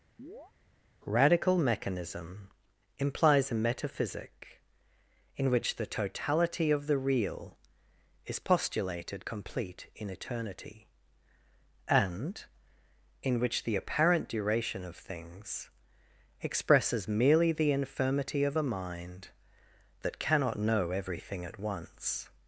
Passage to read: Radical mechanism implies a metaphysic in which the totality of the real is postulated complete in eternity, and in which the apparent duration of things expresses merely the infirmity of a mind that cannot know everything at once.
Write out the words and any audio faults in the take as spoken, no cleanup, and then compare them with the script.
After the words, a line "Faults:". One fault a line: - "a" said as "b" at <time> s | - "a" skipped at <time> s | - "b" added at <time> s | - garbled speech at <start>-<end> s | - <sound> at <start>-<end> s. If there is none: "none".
Radical mechanism implies a metaphysic in which the totality of the real is postulated complete in eternity, and in which the apparent duration of things expresses merely the infirmity of a mind that cannot know everything at once.
Faults:
- chirp at 0.2-0.5 s